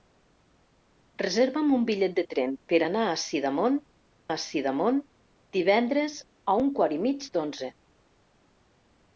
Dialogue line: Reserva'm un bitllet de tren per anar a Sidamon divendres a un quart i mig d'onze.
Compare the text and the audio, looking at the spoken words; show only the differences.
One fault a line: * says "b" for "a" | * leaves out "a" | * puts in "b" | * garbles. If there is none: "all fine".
* puts in "a Sidamon"